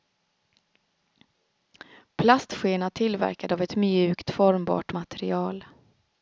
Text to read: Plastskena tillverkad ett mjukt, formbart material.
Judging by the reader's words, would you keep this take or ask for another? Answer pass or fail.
fail